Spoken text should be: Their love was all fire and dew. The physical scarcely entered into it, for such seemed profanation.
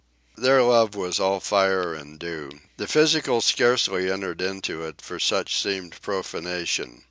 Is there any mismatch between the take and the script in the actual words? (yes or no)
no